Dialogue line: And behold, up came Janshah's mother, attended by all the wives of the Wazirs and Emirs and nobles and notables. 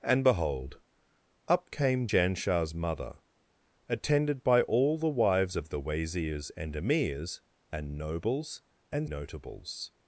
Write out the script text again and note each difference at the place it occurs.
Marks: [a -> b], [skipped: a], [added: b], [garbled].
And behold, up came Janshah's mother, attended by all the wives of the Wazirs and Emirs and nobles and notables.